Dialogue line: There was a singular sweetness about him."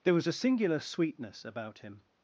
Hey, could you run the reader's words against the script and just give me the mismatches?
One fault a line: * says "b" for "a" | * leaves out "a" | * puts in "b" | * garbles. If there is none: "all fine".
all fine